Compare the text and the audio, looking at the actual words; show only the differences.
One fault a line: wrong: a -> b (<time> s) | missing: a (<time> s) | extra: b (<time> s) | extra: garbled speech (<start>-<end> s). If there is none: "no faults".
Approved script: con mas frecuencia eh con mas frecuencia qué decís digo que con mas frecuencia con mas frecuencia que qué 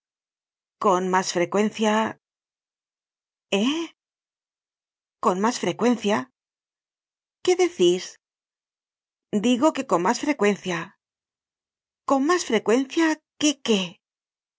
no faults